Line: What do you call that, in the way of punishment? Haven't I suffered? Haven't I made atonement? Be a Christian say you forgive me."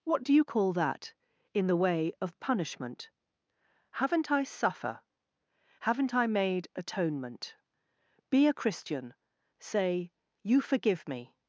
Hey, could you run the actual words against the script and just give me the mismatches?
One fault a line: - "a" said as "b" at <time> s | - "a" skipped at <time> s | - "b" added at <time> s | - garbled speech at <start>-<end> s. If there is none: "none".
- "suffered" said as "suffer" at 4.4 s